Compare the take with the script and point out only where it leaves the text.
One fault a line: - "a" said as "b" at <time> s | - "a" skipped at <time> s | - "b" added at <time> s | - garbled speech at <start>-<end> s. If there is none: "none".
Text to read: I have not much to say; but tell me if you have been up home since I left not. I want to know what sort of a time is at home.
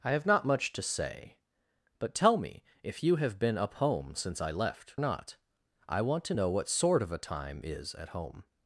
none